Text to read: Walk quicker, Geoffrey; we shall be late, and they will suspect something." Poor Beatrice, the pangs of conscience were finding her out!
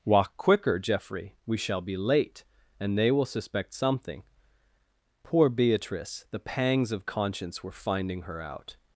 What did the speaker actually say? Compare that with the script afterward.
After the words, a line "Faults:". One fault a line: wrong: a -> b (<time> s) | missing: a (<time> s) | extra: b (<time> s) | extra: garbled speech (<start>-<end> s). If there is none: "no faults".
Walk quicker, Geoffrey; we shall be late, and they will suspect something." Poor Beatrice, the pangs of conscience were finding her out!
Faults:
no faults